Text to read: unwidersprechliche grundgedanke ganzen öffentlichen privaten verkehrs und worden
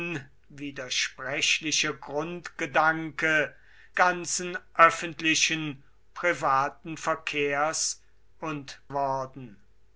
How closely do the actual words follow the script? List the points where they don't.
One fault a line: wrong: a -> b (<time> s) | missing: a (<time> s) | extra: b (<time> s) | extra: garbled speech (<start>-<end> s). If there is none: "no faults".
no faults